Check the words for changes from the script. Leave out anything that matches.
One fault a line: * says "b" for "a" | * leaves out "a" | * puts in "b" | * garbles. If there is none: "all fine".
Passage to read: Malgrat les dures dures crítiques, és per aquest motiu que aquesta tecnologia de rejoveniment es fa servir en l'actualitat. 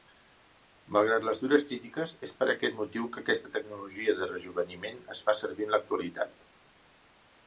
* leaves out "dures"